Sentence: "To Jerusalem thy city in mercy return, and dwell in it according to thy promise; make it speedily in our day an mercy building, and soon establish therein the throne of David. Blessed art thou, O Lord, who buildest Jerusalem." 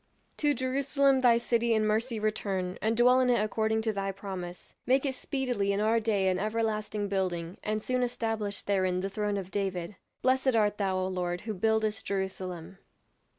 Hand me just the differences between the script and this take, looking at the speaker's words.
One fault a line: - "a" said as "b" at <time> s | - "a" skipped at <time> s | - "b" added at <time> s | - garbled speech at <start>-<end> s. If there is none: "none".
- "mercy" said as "everlasting" at 6.4 s